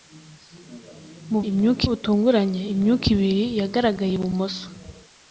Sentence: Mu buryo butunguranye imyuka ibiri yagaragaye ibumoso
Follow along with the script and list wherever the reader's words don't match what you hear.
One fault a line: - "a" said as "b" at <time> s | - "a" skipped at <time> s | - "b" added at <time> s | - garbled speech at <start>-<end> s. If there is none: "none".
- "buryo" said as "imyuka" at 1.5 s